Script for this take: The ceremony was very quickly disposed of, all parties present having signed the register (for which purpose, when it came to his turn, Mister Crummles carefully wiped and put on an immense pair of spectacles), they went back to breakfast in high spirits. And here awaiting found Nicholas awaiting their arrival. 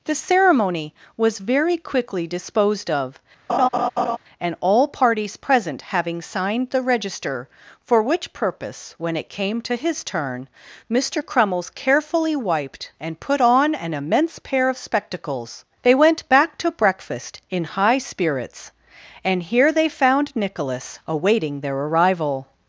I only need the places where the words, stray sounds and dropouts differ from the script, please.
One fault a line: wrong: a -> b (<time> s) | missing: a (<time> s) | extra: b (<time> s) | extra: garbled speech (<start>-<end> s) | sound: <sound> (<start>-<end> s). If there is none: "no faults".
sound: laugh (3.5-4.2 s)
extra: and (4.4 s)
wrong: awaiting -> they (19.7 s)